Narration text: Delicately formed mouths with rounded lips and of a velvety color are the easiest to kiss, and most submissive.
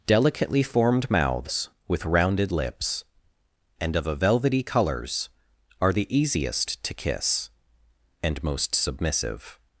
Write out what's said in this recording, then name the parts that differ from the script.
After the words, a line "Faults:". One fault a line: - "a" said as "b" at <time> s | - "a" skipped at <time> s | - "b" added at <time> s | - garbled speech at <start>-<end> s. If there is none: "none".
Delicately formed mouths with rounded lips and of a velvety colors are the easiest to kiss, and most submissive.
Faults:
- "color" said as "colors" at 4.6 s